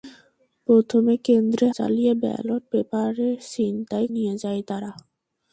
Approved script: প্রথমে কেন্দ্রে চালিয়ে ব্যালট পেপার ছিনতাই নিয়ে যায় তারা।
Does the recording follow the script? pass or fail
pass